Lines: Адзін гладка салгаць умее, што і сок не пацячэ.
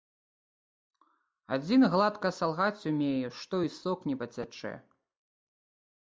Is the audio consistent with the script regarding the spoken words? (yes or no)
yes